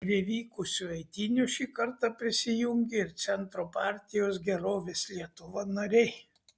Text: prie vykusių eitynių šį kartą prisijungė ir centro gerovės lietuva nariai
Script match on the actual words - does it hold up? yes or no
no